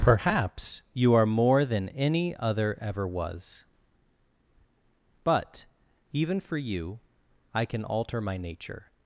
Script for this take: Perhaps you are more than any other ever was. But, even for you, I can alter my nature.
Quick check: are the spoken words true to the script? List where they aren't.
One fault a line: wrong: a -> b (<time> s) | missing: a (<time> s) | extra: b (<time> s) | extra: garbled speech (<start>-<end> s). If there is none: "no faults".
no faults